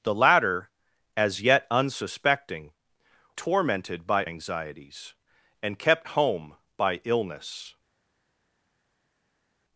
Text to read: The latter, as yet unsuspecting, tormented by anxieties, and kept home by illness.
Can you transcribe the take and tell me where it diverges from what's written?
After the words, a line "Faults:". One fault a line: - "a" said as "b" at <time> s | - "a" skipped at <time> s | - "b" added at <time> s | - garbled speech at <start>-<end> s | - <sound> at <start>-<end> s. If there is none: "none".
The latter, as yet unsuspecting, tormented by anxieties, and kept home by illness.
Faults:
none